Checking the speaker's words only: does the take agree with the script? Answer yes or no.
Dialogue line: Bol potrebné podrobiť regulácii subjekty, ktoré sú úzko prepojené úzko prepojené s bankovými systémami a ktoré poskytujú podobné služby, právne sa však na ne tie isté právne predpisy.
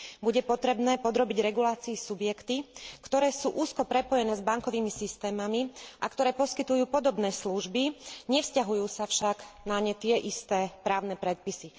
no